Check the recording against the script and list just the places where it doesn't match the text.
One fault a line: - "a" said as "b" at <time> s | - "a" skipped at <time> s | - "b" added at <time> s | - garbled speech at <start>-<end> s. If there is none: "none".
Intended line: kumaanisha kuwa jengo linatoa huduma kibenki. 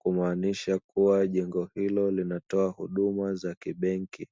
- "hilo" added at 1.8 s
- "za" added at 3.4 s